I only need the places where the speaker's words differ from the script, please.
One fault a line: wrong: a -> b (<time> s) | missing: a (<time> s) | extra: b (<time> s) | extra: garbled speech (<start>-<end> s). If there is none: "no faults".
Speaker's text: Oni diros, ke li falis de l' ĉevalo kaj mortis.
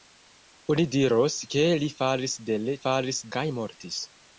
wrong: ĉevalo -> falis (2.8 s)